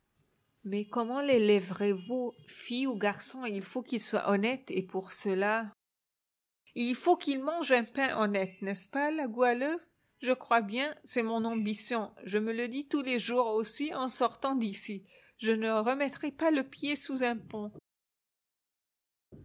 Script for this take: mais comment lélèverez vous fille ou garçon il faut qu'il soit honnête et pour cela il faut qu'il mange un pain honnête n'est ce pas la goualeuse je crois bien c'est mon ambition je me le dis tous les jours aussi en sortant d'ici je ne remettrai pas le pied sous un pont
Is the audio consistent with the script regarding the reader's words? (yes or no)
yes